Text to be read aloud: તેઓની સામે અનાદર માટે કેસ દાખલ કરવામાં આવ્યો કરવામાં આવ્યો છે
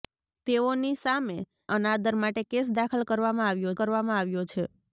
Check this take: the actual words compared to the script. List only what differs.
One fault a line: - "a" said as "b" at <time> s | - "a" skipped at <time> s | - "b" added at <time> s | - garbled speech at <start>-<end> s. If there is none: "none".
none